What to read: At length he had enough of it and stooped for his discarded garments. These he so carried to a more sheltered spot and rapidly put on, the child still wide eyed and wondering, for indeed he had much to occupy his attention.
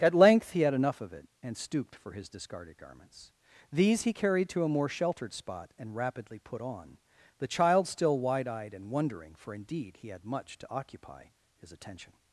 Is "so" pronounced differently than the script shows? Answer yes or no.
yes